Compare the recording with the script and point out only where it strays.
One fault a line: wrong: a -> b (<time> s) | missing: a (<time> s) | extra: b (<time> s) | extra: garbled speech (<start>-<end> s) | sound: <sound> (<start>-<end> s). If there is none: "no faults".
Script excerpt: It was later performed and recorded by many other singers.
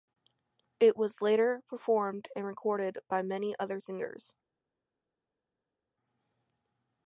no faults